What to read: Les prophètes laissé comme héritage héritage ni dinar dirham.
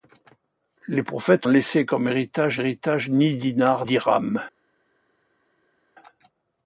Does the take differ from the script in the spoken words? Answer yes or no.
no